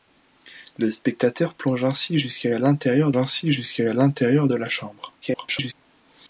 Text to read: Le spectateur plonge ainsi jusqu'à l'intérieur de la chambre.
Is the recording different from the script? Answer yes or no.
yes